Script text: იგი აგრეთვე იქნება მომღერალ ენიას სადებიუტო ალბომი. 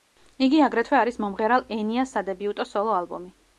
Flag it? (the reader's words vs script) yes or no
yes